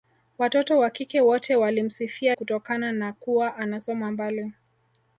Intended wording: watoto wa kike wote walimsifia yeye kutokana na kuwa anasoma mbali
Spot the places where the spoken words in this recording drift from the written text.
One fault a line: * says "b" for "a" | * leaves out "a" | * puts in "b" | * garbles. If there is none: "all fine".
* leaves out "yeye"